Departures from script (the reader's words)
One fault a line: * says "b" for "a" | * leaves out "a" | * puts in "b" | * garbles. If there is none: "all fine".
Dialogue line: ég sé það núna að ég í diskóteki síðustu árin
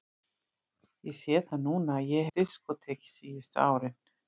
all fine